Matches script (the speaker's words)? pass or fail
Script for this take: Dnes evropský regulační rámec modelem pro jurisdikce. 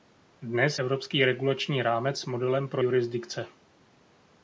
pass